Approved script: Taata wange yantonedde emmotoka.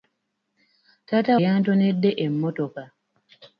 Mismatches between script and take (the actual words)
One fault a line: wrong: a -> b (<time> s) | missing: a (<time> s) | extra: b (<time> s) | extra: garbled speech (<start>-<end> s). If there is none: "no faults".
missing: wange (1.4 s)